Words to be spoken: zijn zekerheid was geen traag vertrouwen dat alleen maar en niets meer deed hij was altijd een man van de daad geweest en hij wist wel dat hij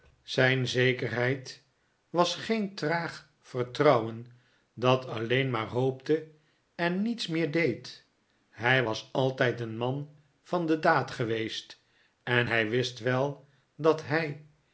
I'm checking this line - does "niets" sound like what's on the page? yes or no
yes